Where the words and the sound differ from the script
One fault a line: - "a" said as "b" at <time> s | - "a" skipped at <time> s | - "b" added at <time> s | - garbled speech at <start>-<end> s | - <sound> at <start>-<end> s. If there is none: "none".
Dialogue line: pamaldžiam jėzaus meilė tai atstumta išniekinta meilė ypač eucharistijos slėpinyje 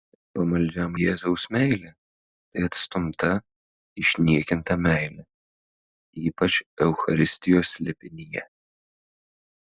none